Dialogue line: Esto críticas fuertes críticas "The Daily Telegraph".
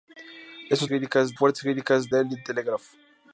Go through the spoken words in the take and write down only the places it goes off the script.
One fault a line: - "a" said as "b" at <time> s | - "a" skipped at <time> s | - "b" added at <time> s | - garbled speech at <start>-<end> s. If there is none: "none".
none